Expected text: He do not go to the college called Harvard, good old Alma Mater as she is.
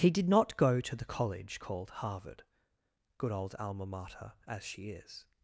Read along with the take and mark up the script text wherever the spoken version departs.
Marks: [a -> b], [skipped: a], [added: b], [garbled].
He [do -> did] not go to the college called Harvard, good old Alma Mater as she is.